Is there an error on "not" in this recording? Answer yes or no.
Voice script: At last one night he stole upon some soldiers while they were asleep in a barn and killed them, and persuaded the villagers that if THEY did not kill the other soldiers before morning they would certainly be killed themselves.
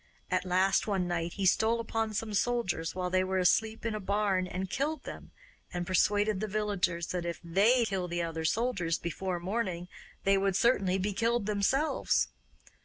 yes